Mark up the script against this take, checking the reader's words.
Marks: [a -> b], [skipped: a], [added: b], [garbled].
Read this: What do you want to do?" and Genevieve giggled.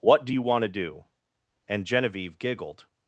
What do you want to do?" and Genevieve giggled.